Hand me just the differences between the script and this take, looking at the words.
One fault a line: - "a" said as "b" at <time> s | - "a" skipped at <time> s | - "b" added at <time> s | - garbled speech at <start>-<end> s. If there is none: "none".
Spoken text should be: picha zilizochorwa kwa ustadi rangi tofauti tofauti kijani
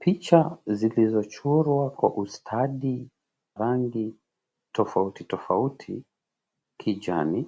none